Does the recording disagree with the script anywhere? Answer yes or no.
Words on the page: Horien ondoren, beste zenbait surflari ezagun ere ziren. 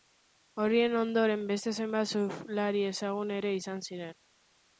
yes